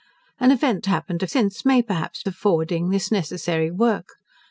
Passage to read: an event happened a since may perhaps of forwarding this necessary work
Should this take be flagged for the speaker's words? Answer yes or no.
no